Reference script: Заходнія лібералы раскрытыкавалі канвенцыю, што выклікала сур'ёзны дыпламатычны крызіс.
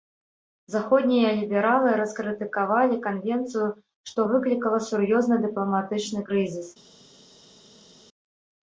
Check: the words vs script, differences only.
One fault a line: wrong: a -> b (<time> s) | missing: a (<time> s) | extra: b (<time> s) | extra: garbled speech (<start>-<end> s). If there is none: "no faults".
no faults